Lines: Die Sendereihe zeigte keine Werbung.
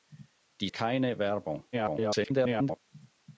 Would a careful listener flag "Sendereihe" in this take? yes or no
yes